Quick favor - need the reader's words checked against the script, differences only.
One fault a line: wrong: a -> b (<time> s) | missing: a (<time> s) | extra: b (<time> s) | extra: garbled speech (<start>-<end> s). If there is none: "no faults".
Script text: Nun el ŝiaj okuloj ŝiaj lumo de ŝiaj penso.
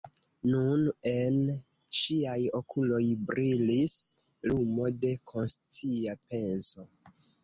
wrong: el -> en (1.1 s)
wrong: ŝiaj -> brilis (3.3 s)
wrong: ŝiaj -> konscia (5.3 s)